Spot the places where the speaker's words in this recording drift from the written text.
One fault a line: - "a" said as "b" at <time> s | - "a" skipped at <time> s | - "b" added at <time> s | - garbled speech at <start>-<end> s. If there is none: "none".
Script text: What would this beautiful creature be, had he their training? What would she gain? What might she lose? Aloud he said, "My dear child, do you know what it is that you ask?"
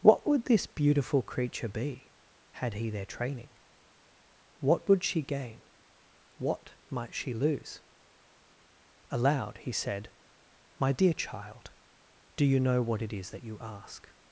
none